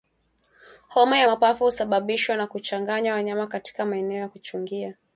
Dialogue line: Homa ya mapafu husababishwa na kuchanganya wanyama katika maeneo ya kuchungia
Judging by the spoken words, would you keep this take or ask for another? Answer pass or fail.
pass